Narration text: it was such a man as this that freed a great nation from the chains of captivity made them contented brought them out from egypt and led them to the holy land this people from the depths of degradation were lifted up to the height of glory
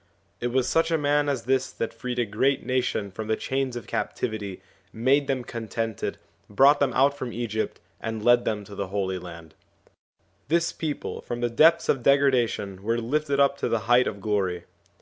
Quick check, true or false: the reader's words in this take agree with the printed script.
true